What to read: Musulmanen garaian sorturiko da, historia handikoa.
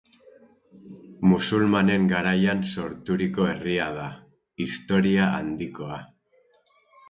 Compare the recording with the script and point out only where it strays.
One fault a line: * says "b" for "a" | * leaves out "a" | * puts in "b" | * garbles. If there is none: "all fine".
* puts in "herria"